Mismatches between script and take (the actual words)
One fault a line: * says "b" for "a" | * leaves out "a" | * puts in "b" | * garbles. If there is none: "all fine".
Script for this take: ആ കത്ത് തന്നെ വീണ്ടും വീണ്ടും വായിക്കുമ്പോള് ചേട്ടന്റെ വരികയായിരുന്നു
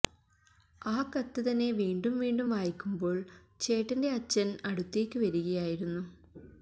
* puts in "അച്ഛന് അടുത്തേക്ക്"